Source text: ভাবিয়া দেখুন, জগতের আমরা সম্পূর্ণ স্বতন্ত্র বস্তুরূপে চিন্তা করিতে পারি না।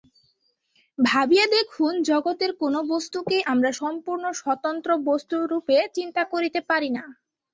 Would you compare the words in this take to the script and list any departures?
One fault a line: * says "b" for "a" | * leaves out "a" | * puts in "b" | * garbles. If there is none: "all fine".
* puts in "কোন বস্তুকেই"